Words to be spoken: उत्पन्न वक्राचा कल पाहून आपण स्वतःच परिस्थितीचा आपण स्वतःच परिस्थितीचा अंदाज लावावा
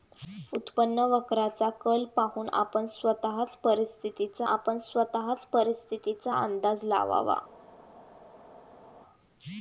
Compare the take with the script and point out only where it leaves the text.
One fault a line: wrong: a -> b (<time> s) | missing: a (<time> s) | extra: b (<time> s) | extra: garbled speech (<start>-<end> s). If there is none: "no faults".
no faults